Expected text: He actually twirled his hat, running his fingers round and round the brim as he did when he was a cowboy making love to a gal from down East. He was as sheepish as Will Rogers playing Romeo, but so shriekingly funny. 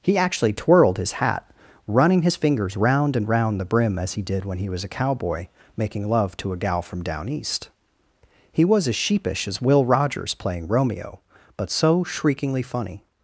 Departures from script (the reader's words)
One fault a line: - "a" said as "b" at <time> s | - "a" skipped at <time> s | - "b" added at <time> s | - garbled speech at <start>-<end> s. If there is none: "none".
none